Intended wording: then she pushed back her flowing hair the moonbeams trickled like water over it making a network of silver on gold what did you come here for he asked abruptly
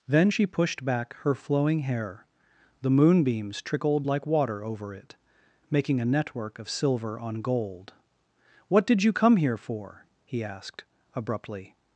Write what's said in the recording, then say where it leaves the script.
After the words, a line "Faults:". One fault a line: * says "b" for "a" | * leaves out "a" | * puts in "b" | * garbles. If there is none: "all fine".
then she pushed back her flowing hair the moonbeams trickled like water over it making a network of silver on gold what did you come here for he asked abruptly
Faults:
all fine